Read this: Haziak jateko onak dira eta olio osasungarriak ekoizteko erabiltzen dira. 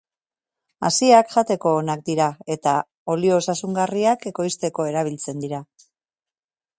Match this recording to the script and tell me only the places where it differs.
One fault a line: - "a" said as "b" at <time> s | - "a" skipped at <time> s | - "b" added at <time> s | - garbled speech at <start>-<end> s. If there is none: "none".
none